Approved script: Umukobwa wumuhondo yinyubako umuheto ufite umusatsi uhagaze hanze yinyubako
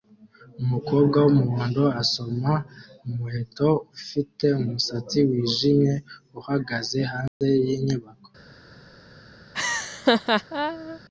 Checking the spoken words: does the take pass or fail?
fail